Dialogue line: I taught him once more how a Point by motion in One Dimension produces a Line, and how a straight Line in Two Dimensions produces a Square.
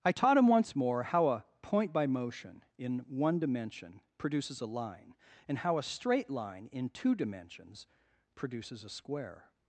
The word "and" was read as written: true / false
true